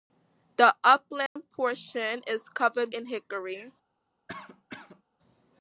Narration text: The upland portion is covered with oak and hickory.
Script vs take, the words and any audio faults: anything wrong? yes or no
yes